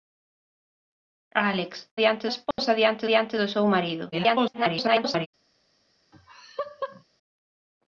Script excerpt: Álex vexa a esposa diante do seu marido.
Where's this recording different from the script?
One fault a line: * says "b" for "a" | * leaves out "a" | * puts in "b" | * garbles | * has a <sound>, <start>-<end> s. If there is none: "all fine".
* says "diante" for "vexa"
* has a dropout, 2.5-2.6 s
* puts in "diante"
* garbles
* has a laugh, 6.1-7.0 s